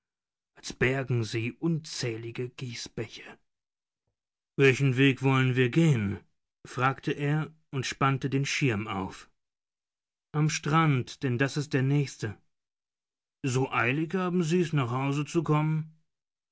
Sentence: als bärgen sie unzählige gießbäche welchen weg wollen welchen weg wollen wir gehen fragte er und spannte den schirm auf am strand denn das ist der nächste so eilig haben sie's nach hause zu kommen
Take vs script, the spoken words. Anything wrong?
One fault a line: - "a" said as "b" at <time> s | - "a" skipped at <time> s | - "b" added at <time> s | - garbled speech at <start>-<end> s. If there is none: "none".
- "welchen weg wollen" skipped at 5.5 s